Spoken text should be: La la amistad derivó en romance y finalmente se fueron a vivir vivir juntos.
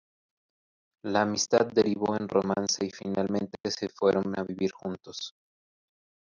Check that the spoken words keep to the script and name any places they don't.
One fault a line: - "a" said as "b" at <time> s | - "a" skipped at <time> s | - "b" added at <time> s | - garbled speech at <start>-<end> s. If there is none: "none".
- "la" skipped at 1.2 s
- "vivir" skipped at 4.7 s